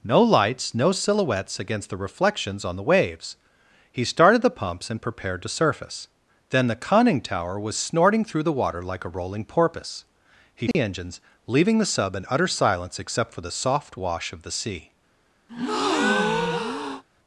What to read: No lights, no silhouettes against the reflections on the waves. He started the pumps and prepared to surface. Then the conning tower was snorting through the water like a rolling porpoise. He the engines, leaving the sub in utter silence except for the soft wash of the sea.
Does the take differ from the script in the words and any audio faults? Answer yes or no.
yes